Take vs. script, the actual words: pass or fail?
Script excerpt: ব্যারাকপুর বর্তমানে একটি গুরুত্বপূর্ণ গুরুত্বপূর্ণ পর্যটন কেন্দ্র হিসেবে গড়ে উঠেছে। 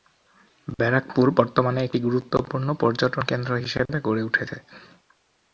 fail